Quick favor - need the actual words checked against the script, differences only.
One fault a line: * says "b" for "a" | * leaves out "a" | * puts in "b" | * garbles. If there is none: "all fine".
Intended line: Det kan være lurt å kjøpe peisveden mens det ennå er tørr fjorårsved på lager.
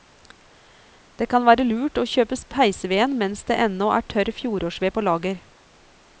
all fine